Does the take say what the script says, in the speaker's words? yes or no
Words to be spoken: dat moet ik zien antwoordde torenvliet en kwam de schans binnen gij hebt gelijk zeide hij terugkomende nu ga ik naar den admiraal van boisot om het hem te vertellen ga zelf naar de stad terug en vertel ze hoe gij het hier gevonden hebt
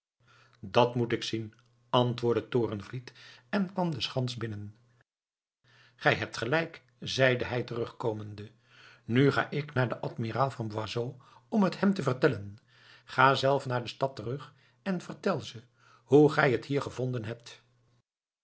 yes